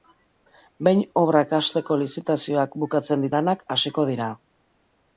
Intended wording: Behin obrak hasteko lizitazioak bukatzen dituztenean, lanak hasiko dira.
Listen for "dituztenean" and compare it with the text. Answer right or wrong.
wrong